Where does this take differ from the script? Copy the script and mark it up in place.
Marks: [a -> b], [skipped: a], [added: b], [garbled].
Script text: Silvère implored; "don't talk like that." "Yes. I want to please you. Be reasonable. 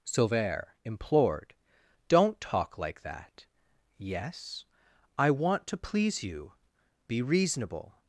Silvère implored; "don't talk like that." "Yes. I want to please you. Be reasonable.